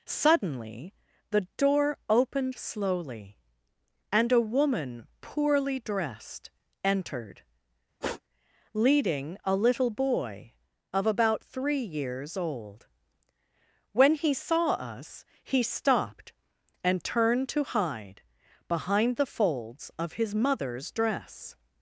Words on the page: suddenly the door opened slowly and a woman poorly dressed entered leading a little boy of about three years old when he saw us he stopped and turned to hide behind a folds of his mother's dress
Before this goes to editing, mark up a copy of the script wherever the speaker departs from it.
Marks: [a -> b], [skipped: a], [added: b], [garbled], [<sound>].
suddenly the door opened slowly and a woman poorly dressed entered [sniff] leading a little boy of about three years old when he saw us he stopped and turned to hide behind [a -> the] folds of his mother's dress